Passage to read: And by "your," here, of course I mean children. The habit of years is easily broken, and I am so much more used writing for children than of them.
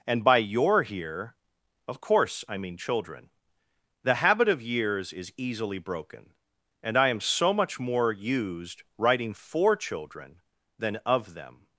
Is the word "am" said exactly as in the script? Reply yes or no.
yes